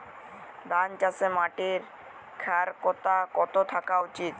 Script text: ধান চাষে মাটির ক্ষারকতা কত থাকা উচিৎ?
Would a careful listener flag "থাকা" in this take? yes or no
no